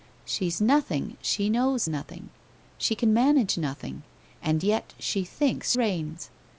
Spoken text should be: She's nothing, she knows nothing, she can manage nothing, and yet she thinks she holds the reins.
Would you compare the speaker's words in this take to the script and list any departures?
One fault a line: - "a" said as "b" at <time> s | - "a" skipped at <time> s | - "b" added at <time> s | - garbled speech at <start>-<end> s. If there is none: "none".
- "she holds the" skipped at 5.7 s